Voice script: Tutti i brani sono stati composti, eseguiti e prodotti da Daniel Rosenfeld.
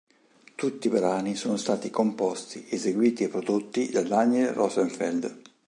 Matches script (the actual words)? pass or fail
pass